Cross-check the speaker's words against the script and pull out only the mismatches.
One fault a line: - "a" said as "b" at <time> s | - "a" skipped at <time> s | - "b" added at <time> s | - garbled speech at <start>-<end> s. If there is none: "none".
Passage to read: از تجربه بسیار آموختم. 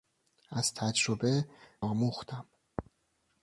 - "بسیار" skipped at 1.5 s